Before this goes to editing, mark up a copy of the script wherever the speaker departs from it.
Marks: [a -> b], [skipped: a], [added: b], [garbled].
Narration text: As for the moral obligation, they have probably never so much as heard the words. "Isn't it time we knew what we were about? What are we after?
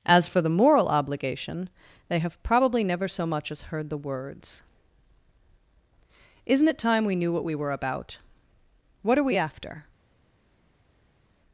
As for the moral obligation, they have probably never so much as heard the words. "Isn't it time we knew what we were about? What are we after?